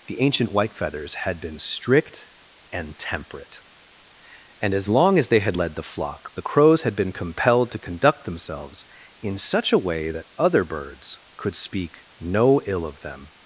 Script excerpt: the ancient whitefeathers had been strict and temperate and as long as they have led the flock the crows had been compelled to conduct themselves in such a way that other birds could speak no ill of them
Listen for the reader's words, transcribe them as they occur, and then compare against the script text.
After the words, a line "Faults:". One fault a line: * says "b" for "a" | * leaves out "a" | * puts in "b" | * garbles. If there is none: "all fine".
the ancient whitefeathers had been strict and temperate and as long as they had led the flock the crows had been compelled to conduct themselves in such a way that other birds could speak no ill of them
Faults:
* says "had" for "have"